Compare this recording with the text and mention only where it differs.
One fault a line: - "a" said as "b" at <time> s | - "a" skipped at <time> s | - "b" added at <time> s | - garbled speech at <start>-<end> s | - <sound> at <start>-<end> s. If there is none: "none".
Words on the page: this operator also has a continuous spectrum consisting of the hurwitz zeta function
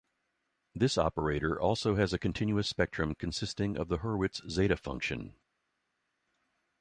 none